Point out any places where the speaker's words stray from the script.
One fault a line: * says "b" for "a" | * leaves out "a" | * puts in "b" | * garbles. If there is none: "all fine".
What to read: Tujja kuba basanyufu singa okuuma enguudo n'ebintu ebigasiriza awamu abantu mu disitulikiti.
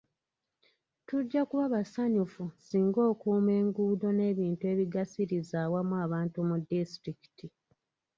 all fine